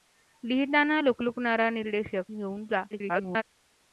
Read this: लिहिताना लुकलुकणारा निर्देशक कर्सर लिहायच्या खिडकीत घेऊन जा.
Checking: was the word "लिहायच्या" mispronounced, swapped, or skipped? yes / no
yes